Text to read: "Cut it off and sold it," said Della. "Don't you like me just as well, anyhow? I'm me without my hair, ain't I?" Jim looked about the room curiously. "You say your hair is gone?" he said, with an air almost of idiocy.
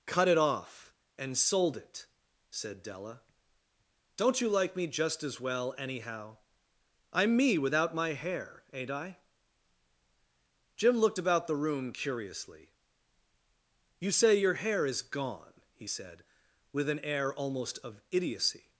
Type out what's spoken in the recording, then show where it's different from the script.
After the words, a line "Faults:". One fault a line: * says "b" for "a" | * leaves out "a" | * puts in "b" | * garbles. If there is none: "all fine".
"Cut it off and sold it," said Della. "Don't you like me just as well, anyhow? I'm me without my hair, ain't I?" Jim looked about the room curiously. "You say your hair is gone?" he said, with an air almost of idiocy.
Faults:
all fine